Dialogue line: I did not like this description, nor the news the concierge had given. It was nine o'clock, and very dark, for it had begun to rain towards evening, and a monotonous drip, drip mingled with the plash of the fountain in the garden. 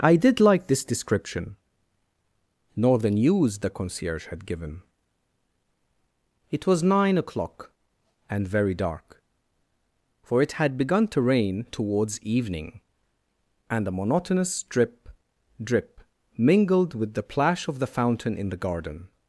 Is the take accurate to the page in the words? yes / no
no